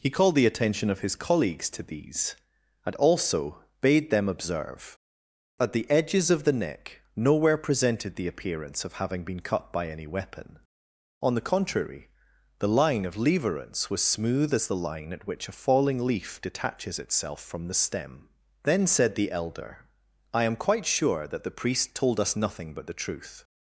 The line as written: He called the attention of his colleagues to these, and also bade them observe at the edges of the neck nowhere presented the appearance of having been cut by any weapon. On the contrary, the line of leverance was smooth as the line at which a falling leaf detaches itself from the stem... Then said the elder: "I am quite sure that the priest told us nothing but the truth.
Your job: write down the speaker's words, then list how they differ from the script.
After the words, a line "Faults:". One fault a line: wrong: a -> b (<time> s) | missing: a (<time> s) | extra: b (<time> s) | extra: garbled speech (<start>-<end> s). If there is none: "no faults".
He called the attention of his colleagues to these, and also bade them observe at the edges of the neck nowhere presented the appearance of having been cut by any weapon. On the contrary, the line of leverance was smooth as the line at which a falling leaf detaches itself from the stem... Then said the elder: "I am quite sure that the priest told us nothing but the truth.
Faults:
no faults